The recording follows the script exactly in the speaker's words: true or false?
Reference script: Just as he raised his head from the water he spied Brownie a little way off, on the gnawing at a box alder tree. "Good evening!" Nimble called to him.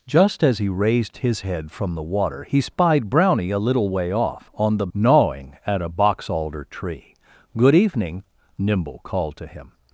true